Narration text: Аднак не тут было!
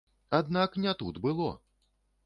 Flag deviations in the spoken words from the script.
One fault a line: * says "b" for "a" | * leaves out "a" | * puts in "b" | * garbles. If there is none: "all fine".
all fine